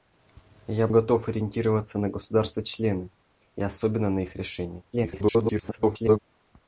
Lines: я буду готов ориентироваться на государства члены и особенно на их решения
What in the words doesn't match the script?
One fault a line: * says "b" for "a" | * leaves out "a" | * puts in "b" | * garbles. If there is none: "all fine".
* leaves out "буду"
* garbles